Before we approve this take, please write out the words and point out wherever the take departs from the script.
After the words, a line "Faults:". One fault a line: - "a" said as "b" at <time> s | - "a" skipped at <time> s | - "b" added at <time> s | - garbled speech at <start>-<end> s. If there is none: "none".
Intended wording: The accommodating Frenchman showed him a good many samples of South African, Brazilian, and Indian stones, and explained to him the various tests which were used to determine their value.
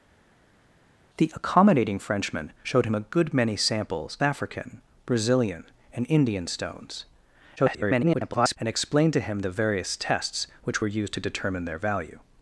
The accommodating Frenchman showed him a good many samples African, Brazilian, and Indian stones, [garbled] and explained to him the various tests which were used to determine their value.
Faults:
- "of South" skipped at 4.2 s
- garbled speech at 7.6-8.6 s